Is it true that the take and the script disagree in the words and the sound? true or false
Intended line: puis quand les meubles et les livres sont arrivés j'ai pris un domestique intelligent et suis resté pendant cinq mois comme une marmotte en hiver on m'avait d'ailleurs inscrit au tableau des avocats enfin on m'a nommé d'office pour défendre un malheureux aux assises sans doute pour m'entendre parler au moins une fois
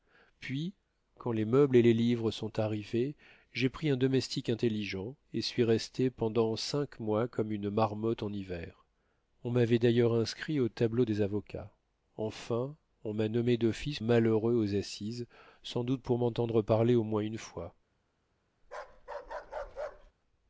true